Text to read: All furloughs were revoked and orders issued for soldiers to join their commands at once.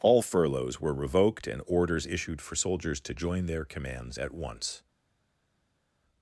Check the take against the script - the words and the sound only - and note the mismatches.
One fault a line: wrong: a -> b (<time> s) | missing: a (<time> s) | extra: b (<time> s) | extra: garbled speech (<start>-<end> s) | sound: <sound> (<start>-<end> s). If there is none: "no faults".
no faults